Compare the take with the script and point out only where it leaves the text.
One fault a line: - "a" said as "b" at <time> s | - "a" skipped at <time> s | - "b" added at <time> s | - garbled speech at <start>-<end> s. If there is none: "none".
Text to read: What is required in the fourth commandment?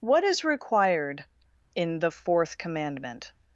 none